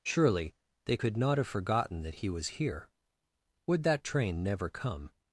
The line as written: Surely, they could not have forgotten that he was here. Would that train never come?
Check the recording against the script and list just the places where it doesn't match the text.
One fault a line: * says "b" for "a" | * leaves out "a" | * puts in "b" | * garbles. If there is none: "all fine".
all fine